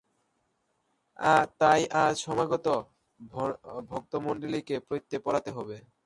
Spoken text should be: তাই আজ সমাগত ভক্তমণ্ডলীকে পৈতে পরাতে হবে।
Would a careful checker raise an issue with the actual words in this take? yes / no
no